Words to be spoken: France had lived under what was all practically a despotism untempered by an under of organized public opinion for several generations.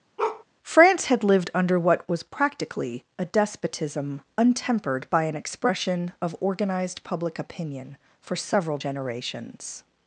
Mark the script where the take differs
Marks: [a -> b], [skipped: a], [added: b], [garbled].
France had lived under what was [skipped: all] practically a despotism untempered by an [under -> expression] of organized public opinion for several generations.